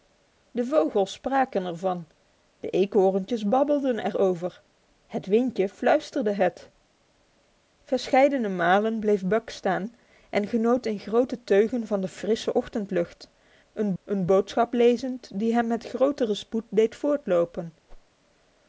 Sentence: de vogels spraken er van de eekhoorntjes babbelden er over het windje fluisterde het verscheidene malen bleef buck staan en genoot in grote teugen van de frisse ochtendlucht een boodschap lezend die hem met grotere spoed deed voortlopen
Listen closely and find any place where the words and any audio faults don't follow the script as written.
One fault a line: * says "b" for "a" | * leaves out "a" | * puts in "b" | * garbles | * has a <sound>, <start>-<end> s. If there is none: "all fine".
* puts in "een"
* has a whoosh, 17.9-18.1 s